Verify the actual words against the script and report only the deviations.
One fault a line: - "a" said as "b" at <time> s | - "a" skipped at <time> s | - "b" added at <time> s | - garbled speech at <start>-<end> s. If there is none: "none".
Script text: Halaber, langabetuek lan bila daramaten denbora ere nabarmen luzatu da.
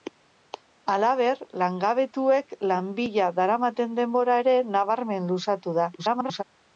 - garbled speech at 6.0-6.4 s